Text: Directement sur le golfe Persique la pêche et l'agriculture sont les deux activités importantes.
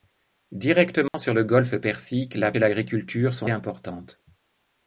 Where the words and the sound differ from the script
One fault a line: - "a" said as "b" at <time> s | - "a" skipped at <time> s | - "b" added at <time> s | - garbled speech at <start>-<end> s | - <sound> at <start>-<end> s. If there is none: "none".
- dropout at 1.1-1.1 s
- "pêche" skipped at 2.5 s
- "les deux activités" skipped at 3.5 s